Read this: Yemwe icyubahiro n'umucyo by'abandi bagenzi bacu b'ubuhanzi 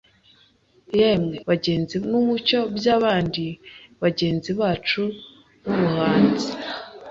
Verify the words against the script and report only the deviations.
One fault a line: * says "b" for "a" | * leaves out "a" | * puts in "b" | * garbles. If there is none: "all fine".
* says "bagenzi" for "icyubahiro"